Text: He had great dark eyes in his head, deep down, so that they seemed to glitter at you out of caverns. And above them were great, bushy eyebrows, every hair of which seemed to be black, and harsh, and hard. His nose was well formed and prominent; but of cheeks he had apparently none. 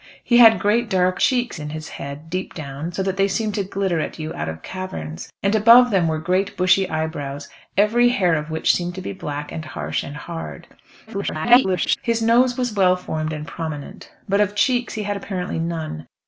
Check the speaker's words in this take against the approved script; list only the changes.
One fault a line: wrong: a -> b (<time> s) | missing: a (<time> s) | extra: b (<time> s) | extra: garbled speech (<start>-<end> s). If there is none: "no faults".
wrong: eyes -> cheeks (1.2 s)
extra: garbled speech (11.1-12.0 s)